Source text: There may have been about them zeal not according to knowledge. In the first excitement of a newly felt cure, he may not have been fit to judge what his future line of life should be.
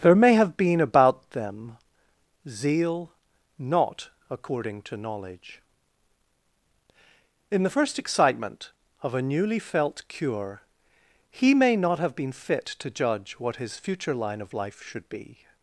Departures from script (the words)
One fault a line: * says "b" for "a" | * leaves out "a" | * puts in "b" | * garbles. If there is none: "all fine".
all fine